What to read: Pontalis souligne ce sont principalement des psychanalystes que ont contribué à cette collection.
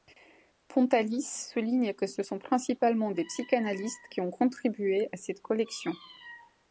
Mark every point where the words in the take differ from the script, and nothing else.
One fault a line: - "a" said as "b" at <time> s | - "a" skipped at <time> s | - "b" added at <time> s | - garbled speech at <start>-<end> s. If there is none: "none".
- "que" added at 1.9 s
- "que" said as "qui" at 4.1 s